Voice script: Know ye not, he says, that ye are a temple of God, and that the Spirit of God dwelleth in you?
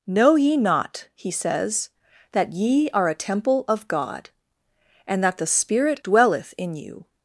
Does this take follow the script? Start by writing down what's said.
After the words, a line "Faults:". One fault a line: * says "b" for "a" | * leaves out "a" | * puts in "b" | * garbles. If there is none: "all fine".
Know ye not, he says, that ye are a temple of God, and that the Spirit dwelleth in you?
Faults:
* leaves out "of God"